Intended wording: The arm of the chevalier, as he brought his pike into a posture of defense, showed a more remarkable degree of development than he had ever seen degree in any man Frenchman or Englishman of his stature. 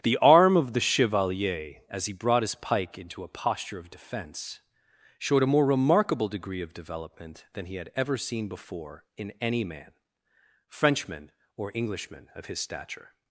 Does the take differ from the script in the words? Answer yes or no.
yes